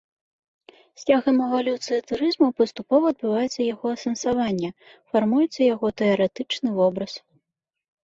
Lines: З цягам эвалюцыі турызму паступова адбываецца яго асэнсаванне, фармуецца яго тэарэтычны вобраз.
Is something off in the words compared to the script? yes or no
no